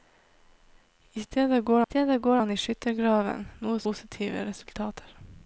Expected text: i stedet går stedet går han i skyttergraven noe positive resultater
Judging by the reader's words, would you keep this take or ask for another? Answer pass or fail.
pass